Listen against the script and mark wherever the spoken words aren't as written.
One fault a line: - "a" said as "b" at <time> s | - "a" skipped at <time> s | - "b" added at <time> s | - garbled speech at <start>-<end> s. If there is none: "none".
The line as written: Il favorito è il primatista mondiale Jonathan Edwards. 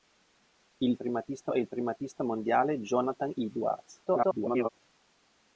- "favorito" said as "primatista" at 0.9 s
- garbled speech at 4.1-4.7 s